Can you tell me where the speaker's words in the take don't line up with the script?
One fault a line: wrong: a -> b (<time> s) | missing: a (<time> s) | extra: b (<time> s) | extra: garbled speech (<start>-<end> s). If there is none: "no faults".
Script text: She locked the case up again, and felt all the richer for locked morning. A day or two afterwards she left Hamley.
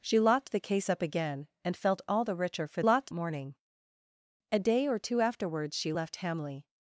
no faults